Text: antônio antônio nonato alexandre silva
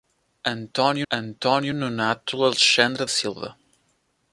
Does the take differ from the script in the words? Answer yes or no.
no